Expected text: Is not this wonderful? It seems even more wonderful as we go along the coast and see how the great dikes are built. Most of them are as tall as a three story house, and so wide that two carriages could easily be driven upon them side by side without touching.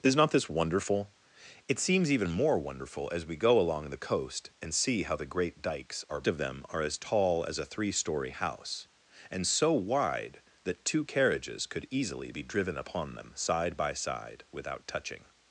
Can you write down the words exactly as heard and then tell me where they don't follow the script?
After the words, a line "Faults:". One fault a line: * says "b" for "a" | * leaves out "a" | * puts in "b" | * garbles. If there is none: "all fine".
Is not this wonderful? It seems even more wonderful as we go along the coast and see how the great dikes are of them are as tall as a three story house, and so wide that two carriages could easily be driven upon them side by side without touching.
Faults:
* leaves out "built Most"